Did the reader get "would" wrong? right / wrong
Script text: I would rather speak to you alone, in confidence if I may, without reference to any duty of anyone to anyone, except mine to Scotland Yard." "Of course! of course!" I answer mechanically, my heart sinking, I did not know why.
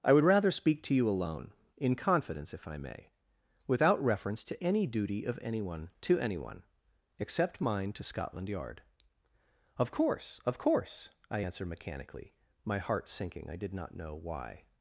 right